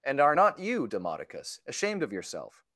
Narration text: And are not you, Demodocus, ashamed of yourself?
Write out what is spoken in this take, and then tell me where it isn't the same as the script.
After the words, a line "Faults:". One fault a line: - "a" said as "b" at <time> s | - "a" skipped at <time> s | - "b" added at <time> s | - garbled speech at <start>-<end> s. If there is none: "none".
And are not you, Demodocus, ashamed of yourself?
Faults:
none